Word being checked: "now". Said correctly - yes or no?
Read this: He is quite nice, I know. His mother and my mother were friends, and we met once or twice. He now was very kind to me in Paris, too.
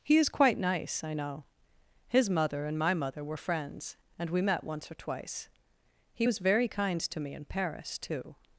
no